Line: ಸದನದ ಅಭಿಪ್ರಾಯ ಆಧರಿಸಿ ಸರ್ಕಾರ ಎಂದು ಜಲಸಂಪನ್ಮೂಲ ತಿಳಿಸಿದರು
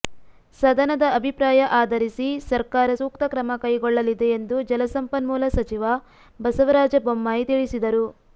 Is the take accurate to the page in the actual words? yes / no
no